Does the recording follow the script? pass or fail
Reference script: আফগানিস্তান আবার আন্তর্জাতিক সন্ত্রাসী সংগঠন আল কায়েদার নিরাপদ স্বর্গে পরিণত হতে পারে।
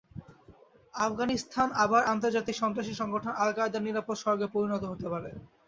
pass